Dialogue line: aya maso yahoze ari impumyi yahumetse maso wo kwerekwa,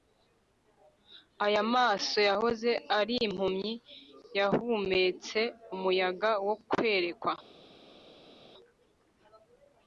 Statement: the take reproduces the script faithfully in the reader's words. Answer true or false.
false